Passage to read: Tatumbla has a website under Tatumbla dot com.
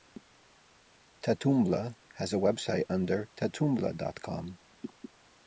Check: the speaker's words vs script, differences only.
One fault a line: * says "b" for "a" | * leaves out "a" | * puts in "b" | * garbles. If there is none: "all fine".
all fine